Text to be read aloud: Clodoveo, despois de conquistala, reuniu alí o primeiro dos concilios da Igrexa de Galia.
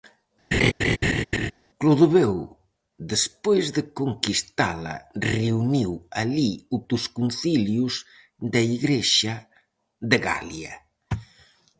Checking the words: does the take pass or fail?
fail